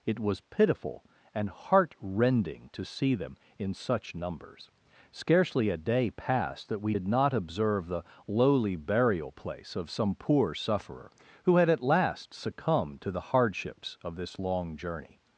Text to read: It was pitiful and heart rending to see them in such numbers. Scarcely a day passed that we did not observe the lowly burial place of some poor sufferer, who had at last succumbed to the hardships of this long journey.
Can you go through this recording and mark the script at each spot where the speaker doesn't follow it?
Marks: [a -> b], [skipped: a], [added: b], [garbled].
It was pitiful and heart rending to see them in such numbers. Scarcely a day passed that we did not observe the lowly burial place of some poor sufferer, who had at last succumbed to the hardships of this long journey.